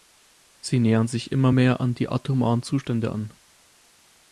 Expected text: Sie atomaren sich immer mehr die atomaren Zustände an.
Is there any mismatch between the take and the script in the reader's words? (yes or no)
yes